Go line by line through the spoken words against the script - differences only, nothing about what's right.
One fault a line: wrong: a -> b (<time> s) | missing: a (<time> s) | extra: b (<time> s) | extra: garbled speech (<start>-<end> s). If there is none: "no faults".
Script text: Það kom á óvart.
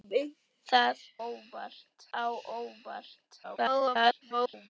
wrong: kom -> óvart (1.3 s)
extra: garbled speech (3.4-4.7 s)